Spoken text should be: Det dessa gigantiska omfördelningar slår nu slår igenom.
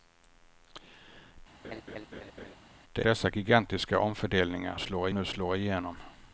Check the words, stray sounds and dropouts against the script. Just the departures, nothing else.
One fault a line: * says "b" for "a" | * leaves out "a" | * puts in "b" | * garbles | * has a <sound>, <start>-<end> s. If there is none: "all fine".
* has a laugh, 1.6-2.6 s